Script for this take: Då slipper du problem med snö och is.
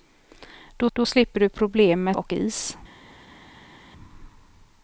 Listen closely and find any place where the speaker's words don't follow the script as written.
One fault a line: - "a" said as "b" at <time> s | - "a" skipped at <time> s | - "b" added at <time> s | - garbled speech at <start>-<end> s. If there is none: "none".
- "då" added at 0.9 s
- "snö" skipped at 2.2 s